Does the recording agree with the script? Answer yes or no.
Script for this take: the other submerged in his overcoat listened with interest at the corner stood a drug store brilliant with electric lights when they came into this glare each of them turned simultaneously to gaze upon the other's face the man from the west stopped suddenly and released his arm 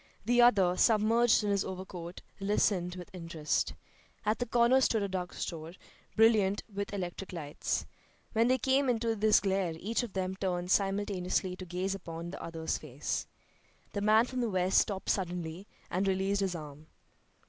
yes